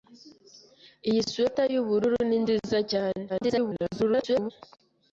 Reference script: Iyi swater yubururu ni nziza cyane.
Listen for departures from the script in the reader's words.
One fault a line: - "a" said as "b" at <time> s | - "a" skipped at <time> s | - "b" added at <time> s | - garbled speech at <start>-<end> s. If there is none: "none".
- garbled speech at 3.3-4.5 s